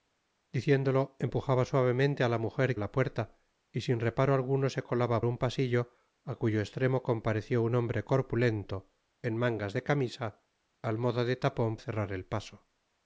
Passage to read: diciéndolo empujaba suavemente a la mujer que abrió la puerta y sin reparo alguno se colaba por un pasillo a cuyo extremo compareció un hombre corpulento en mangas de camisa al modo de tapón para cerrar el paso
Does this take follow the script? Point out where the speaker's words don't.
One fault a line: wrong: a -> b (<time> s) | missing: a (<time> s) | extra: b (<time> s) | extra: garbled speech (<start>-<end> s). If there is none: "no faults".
missing: que abrió (2.8 s)
missing: por (5.2 s)
missing: para (11.8 s)